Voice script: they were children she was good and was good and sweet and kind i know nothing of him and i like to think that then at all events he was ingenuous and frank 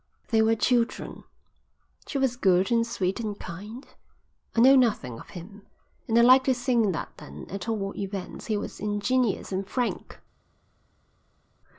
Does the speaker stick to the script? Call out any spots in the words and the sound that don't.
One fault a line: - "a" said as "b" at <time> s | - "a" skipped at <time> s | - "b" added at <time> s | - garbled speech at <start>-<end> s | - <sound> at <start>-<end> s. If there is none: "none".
- "was good and" skipped at 2.9 s